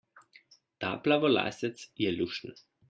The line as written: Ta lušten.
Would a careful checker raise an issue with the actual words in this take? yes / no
yes